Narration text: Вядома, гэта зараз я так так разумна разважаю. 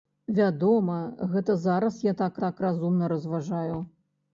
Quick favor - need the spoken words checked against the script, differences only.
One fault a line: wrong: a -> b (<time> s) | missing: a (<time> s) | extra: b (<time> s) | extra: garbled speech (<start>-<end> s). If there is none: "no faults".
no faults